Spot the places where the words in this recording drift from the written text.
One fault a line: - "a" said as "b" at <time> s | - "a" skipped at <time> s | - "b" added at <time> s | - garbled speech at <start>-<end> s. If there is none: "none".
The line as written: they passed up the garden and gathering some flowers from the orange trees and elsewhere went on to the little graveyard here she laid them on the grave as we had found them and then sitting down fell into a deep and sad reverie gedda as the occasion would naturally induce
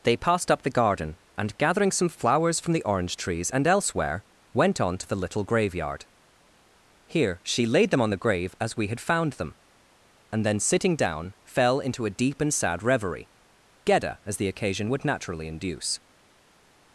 none